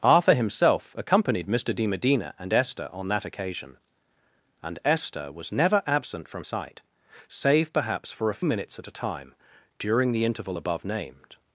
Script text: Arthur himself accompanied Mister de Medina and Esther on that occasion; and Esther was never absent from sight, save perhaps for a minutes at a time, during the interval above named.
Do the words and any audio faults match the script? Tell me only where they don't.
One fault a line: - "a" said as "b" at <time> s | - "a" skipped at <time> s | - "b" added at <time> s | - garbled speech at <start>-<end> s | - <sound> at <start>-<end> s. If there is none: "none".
none